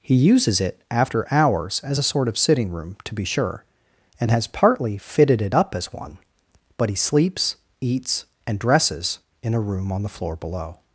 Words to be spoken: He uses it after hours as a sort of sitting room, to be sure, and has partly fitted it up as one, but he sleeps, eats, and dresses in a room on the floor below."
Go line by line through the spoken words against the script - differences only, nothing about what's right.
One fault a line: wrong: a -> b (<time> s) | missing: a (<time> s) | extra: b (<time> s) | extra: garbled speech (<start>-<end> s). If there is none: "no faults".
no faults